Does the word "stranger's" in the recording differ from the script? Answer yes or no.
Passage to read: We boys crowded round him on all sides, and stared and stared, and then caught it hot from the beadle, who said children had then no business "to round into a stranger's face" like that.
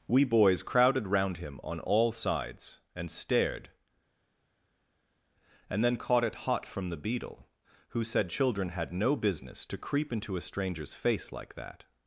no